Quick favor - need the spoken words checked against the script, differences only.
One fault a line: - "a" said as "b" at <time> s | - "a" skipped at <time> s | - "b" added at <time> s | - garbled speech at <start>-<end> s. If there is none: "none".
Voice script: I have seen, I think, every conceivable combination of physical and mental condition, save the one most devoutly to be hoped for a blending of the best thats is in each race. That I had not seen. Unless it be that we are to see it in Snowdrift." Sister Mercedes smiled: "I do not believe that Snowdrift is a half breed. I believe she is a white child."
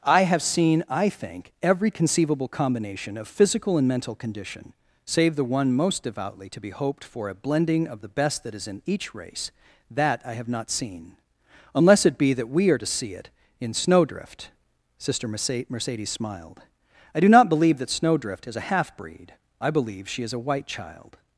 - "thats" said as "that" at 8.4 s
- "had" said as "have" at 10.3 s